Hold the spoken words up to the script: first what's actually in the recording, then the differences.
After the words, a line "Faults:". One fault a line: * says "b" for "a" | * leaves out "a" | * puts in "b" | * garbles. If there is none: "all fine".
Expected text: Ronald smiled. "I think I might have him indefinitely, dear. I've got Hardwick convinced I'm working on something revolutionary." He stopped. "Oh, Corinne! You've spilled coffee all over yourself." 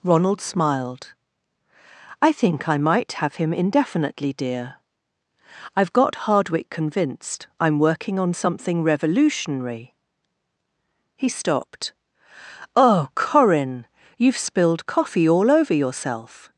Ronald smiled. "I think I might have him indefinitely, dear. I've got Hardwick convinced I'm working on something revolutionary." He stopped. "Oh, Corinne! You've spilled coffee all over yourself."
Faults:
all fine